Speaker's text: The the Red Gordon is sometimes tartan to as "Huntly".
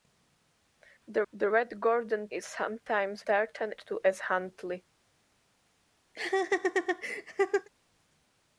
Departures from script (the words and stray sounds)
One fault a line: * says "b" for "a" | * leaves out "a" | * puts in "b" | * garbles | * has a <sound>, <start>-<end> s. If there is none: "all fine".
* has a laugh, 6.1-7.7 s